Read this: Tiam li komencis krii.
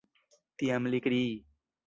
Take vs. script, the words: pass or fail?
fail